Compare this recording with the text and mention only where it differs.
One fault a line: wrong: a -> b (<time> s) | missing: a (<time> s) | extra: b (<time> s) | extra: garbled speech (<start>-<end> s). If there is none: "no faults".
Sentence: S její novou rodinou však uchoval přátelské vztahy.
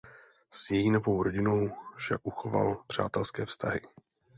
no faults